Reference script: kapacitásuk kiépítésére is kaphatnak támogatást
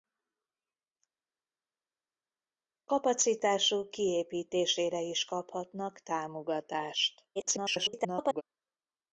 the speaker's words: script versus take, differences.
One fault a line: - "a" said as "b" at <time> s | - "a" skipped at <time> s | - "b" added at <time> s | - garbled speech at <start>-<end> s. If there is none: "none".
- garbled speech at 7.4-8.4 s